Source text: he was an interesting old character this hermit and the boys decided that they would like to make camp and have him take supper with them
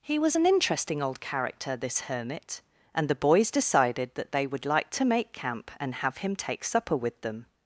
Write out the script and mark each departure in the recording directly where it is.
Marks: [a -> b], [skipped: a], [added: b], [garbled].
he was an interesting old character this hermit and the boys decided that they would like to make camp and have him take supper with them